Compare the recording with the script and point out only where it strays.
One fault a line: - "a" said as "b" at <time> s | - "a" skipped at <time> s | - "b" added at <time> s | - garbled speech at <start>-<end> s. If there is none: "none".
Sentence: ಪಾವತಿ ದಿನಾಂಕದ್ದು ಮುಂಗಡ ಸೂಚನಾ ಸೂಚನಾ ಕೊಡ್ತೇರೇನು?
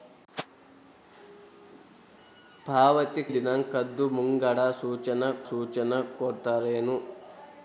none